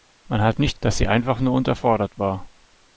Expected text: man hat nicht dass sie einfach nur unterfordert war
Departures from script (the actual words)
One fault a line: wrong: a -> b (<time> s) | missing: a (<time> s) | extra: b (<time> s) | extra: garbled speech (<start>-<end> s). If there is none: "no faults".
no faults